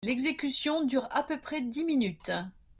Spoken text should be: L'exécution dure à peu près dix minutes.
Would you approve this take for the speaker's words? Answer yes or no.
yes